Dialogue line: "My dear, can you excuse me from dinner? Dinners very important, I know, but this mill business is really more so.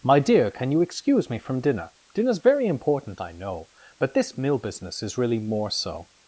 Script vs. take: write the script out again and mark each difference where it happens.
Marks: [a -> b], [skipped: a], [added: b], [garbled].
"My dear, can you excuse me from dinner? Dinners very important, I know, but this mill business is really more so.